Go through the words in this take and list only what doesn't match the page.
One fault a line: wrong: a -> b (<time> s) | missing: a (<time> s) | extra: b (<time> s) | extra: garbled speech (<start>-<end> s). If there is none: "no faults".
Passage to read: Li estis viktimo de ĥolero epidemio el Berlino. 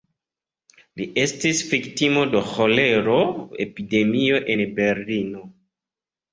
wrong: el -> en (4.6 s)